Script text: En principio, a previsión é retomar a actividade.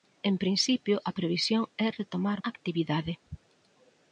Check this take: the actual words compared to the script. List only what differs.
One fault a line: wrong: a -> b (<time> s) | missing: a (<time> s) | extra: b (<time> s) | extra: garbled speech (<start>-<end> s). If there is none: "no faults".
no faults